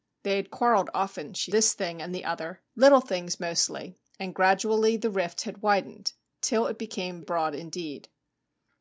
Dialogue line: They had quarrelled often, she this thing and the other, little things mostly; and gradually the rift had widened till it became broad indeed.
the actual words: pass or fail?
pass